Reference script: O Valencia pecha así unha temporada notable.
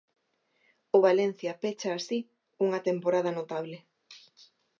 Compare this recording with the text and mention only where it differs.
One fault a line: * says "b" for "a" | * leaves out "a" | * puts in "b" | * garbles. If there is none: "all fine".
all fine